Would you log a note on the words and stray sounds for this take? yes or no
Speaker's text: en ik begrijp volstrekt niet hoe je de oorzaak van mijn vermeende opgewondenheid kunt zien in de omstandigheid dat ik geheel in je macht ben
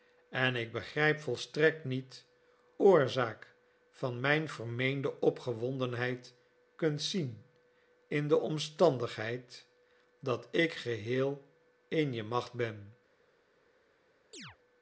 yes